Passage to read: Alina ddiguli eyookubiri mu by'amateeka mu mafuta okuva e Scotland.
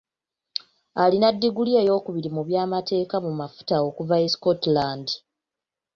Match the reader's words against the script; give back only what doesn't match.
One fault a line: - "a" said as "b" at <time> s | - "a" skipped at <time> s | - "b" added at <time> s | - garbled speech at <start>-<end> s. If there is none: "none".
none